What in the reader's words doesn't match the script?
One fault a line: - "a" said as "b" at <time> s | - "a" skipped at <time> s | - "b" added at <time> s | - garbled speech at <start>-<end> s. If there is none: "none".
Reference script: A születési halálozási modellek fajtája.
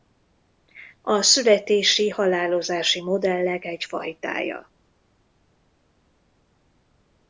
- "egy" added at 3.6 s